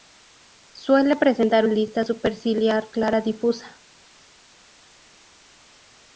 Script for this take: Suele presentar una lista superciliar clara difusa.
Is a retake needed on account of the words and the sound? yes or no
yes